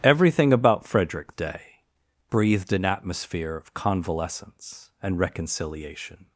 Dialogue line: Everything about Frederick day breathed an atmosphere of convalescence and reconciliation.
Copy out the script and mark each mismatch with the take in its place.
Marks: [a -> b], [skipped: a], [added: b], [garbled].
Everything about Frederick day breathed an atmosphere of convalescence and reconciliation.